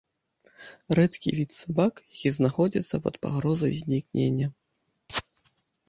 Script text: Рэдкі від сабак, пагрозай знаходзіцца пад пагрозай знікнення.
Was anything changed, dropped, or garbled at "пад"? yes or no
no